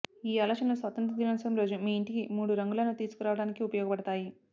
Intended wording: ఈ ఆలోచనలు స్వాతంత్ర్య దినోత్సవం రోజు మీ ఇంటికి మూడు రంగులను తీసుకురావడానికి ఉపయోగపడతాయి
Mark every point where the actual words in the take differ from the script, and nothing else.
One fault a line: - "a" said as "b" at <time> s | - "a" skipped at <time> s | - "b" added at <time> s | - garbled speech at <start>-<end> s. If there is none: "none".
none